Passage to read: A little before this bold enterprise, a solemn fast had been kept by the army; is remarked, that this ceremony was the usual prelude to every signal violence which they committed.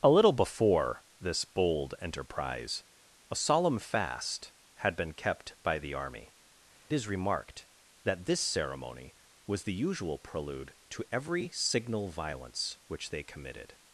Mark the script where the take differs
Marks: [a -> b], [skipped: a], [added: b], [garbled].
A little before this bold enterprise, a solemn fast had been kept by the army; is remarked, that this ceremony was the usual prelude to every signal violence which they committed.